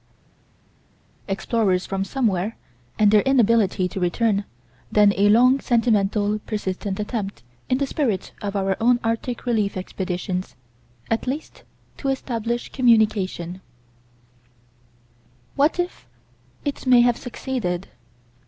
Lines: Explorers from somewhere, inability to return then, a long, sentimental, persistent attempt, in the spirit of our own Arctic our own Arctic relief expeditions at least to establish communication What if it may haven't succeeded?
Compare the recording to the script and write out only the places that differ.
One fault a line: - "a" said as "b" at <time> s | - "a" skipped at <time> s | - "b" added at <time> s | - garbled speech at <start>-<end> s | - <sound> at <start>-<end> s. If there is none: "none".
- "and their" added at 3.0 s
- "our own Arctic" skipped at 9.5 s
- "haven't" said as "have" at 17.0 s